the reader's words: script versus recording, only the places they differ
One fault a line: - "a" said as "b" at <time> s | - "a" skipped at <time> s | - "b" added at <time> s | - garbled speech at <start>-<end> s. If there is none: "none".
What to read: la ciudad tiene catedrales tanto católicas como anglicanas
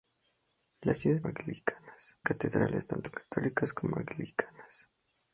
- "tiene" said as "anglicanas" at 1.2 s